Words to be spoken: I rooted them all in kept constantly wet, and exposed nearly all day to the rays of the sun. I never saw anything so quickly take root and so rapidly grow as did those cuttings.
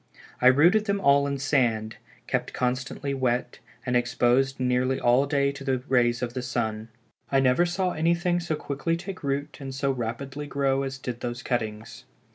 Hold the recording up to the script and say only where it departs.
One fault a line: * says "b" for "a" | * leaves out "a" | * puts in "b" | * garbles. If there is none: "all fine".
* puts in "sand"